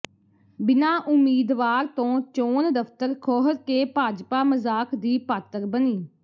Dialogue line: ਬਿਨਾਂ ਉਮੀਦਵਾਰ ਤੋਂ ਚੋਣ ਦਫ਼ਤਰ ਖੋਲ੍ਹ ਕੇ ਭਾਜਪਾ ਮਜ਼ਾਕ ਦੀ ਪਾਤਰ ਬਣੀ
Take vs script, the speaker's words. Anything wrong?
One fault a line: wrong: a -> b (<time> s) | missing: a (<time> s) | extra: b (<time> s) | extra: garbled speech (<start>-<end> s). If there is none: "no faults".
no faults